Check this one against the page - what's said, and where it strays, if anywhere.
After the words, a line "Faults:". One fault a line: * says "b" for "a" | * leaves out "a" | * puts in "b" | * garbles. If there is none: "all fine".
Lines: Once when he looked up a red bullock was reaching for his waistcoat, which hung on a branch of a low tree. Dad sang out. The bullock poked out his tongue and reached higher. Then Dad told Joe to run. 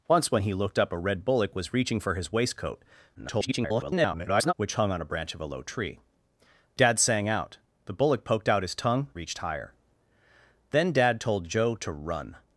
Once when he looked up a red bullock was reaching for his waistcoat, [garbled] which hung on a branch of a low tree. Dad sang out. The bullock poked out his tongue reached higher. Then Dad told Joe to run.
Faults:
* garbles
* leaves out "and"